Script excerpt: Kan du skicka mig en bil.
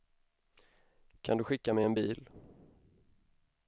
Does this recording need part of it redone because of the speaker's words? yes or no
no